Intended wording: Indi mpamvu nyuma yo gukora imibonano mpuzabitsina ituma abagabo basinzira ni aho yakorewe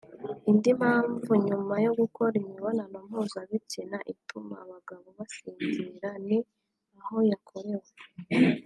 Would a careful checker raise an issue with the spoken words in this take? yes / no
no